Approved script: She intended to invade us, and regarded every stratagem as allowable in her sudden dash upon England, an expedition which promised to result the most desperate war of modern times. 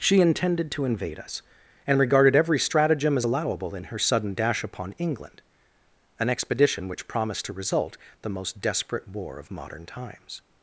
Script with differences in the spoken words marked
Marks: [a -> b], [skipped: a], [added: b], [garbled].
She intended to invade us, and regarded every stratagem as allowable in her sudden dash upon England, an expedition which promised to result the most desperate war of modern times.